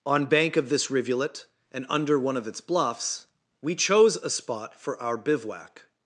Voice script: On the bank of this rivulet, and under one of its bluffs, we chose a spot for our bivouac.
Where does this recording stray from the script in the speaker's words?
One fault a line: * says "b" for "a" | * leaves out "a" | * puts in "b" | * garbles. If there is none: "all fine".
* leaves out "the"